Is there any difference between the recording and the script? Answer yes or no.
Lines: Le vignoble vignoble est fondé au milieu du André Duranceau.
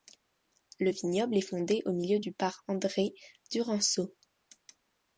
yes